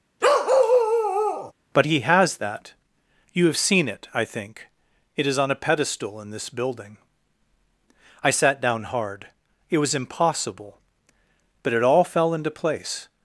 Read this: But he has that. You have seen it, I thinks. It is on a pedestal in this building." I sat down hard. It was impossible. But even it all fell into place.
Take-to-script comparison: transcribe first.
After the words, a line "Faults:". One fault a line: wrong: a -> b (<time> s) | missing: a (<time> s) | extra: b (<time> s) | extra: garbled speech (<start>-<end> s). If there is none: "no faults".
But he has that. You have seen it, I think. It is on a pedestal in this building." I sat down hard. It was impossible. But it all fell into place.
Faults:
wrong: thinks -> think (4.2 s)
missing: even (11.7 s)